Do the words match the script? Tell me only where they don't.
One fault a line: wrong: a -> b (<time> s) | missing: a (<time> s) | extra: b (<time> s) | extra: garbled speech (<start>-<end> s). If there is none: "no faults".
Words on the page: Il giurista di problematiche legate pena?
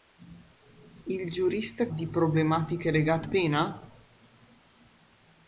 no faults